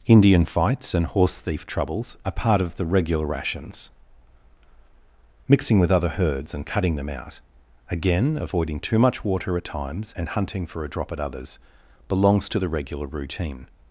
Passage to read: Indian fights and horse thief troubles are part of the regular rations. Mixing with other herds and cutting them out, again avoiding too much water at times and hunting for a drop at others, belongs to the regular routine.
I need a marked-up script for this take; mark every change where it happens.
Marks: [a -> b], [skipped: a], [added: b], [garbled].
Indian fights and horse thief troubles are part of the regular rations. Mixing with other herds and cutting them out, again avoiding too much water at times and hunting for a drop at others, belongs to the regular routine.